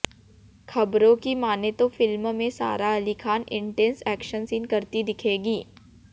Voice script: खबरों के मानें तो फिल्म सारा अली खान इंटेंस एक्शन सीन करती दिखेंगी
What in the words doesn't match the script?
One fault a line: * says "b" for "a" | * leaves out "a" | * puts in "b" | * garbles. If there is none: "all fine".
* says "की" for "के"
* puts in "में"